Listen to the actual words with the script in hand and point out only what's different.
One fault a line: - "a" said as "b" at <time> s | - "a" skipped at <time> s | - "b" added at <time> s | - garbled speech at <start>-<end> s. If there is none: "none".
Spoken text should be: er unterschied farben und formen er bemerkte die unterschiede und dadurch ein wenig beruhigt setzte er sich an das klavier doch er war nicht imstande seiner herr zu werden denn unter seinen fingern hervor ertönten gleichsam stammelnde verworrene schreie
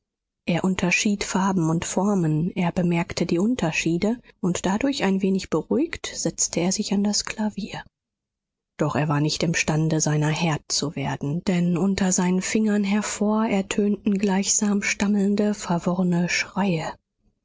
none